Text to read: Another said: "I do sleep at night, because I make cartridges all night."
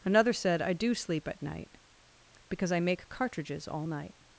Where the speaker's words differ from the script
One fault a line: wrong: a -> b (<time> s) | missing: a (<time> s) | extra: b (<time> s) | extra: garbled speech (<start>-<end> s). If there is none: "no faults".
no faults